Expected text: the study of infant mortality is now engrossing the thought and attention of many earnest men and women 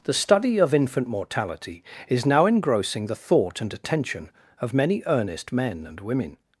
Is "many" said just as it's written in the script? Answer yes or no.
yes